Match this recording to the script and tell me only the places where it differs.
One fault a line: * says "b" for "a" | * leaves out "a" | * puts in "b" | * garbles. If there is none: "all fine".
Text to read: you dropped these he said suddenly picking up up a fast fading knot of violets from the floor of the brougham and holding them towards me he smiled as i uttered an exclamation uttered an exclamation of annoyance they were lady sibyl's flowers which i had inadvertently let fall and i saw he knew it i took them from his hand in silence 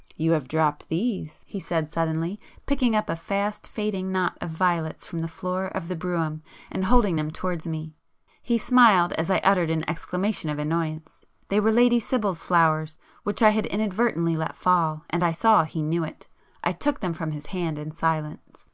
* puts in "have"
* leaves out "up"
* leaves out "uttered an exclamation"